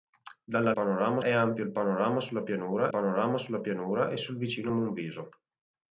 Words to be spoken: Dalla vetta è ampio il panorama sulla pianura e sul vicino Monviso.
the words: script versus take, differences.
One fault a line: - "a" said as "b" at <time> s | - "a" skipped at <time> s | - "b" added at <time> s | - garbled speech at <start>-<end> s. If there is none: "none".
- "vetta" said as "panorama" at 0.7 s
- "panorama sulla pianura" added at 2.9 s